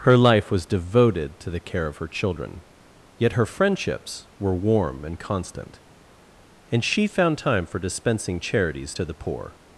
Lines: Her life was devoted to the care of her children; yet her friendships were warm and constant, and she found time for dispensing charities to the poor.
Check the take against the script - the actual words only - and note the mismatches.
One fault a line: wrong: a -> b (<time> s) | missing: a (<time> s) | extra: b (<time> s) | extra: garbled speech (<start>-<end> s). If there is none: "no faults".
no faults